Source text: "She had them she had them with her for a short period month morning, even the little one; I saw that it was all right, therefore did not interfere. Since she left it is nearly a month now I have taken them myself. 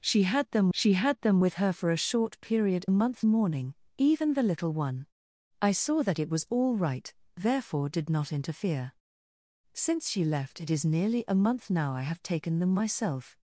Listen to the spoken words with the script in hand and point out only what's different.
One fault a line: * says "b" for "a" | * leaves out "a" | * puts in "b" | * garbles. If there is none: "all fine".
all fine